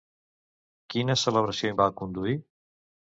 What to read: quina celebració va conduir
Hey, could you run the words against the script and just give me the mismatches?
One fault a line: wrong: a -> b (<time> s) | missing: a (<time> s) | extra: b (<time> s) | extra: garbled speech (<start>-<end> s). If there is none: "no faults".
no faults